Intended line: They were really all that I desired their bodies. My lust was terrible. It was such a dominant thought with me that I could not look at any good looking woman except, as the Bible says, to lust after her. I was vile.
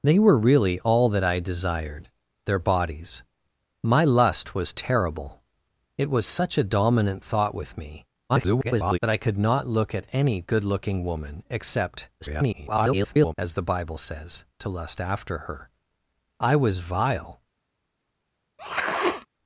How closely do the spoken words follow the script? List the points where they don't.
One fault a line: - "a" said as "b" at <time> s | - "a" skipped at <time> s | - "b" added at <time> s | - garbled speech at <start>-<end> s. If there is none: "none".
- garbled speech at 8.3-9.0 s
- garbled speech at 12.2-13.3 s